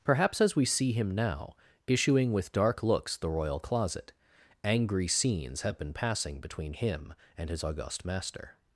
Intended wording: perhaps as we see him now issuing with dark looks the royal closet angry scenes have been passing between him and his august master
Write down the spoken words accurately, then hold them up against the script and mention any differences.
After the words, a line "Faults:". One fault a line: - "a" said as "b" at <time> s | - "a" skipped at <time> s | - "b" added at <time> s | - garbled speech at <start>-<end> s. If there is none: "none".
perhaps as we see him now issuing with dark looks the royal closet angry scenes have been passing between him and his august master
Faults:
none